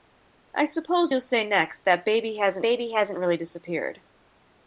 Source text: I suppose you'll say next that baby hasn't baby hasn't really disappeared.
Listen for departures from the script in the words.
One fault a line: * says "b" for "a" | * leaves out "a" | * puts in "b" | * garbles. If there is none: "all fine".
all fine